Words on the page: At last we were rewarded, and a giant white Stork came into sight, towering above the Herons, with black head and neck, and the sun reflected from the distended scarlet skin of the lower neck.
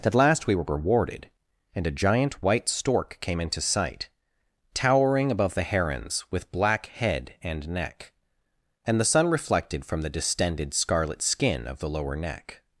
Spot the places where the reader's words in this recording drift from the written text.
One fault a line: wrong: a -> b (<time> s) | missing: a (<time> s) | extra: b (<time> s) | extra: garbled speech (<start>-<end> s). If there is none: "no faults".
no faults